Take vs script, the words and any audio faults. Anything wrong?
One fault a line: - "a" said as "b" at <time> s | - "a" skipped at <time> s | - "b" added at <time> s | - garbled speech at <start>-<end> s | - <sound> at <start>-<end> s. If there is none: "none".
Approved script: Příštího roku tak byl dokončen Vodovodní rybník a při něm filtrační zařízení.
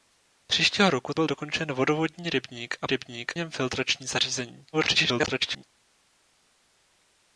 - "tak" skipped at 1.1 s
- "při" said as "rybník" at 2.9 s
- garbled speech at 4.7-5.6 s